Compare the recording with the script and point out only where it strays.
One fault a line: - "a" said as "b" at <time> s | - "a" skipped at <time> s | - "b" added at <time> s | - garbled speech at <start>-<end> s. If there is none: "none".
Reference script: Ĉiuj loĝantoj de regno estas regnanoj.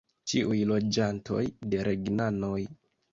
- "regno estas" skipped at 1.8 s